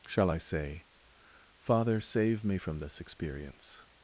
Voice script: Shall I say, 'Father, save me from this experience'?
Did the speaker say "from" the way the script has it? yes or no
yes